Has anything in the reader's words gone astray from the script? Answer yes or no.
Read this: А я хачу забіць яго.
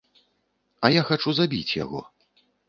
no